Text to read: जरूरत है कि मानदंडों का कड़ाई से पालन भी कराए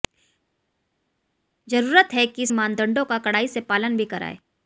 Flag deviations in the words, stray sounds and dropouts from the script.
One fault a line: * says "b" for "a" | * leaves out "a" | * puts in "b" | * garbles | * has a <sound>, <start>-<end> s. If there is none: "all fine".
all fine